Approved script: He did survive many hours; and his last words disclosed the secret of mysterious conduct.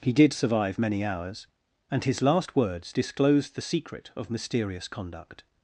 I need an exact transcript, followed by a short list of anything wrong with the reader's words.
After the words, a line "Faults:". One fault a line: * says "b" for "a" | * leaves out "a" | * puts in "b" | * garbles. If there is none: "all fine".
He did survive many hours; and his last words disclosed the secret of mysterious conduct.
Faults:
all fine